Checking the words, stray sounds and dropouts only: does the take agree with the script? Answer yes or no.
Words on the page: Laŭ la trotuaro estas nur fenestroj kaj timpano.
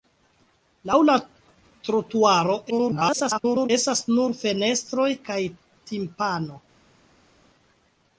no